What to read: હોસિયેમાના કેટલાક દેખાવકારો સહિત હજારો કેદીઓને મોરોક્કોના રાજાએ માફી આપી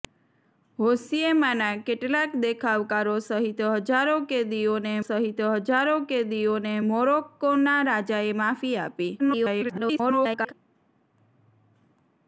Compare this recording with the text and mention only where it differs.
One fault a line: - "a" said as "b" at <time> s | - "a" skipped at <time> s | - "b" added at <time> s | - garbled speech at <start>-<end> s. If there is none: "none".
- "સહિત હજારો કેદીઓને" added at 5.0 s
- garbled speech at 9.2-10.5 s